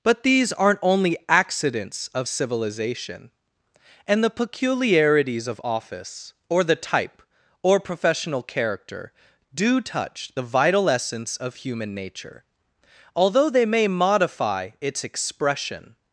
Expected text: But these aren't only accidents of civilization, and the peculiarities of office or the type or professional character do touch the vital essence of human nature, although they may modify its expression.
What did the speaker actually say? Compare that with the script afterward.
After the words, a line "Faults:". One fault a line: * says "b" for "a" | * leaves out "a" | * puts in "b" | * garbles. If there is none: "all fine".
But these aren't only accidents of civilization, and the peculiarities of office or the type or professional character do touch the vital essence of human nature, although they may modify its expression.
Faults:
all fine